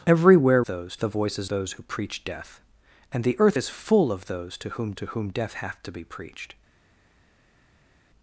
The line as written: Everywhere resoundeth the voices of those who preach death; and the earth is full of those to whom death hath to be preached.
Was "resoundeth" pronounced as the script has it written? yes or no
no